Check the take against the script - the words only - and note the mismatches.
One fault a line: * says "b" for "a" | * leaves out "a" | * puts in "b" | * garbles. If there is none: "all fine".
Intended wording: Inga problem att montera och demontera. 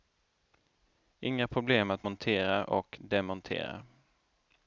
all fine